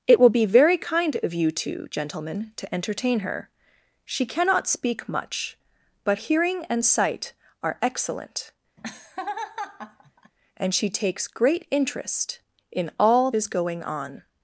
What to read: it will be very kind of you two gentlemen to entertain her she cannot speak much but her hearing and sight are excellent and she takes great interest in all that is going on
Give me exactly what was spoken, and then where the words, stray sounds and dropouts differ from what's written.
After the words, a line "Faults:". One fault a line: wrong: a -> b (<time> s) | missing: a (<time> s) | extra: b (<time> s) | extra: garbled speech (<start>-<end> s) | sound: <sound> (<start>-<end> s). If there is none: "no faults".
it will be very kind of you two gentlemen to entertain her she cannot speak much but hearing and sight are excellent and she takes great interest in all is going on
Faults:
missing: her (6.2 s)
sound: laugh (8.8-10.3 s)
missing: that (13.3 s)